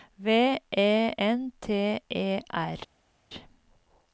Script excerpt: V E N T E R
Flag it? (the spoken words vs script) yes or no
no